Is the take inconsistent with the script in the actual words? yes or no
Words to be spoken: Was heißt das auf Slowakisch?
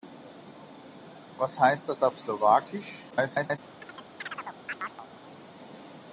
yes